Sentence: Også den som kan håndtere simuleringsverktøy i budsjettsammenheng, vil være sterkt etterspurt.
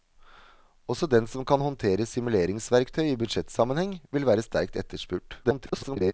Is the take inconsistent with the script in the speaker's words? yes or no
yes